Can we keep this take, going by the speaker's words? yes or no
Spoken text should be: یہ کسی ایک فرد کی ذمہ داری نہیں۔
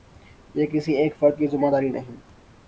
yes